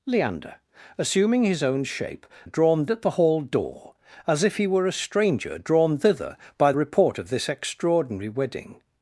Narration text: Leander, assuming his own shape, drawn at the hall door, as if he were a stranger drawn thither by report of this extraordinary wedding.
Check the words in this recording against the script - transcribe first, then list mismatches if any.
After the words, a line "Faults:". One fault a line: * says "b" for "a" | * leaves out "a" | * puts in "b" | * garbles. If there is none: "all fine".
Leander, assuming his own shape, drawn at the hall door, as if he were a stranger drawn thither by report of this extraordinary wedding.
Faults:
all fine